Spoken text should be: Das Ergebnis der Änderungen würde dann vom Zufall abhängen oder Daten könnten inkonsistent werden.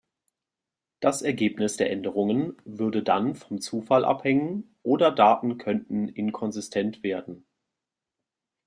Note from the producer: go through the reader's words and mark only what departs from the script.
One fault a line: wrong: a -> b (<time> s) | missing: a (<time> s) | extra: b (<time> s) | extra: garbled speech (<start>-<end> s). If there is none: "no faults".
no faults